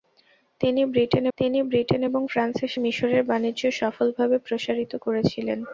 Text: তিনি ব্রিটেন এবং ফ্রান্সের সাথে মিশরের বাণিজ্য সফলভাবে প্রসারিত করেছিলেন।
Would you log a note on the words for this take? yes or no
yes